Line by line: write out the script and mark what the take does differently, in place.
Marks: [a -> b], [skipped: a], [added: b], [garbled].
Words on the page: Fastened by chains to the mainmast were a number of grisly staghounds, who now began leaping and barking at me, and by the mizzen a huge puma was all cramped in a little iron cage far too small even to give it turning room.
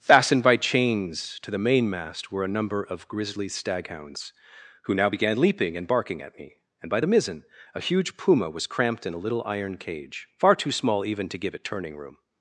Fastened by chains to the mainmast were a number of grisly staghounds, who now began leaping and barking at me, and by the mizzen a huge puma was [skipped: all] cramped in a little iron cage far too small even to give it turning room.